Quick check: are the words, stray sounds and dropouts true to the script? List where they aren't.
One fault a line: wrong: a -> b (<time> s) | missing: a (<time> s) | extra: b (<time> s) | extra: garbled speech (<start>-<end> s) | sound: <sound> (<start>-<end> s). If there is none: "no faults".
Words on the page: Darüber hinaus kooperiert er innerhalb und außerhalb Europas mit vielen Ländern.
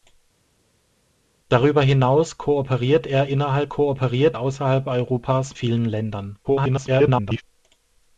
wrong: und -> kooperiert (3.7 s)
missing: mit (5.6 s)
extra: garbled speech (6.4-7.4 s)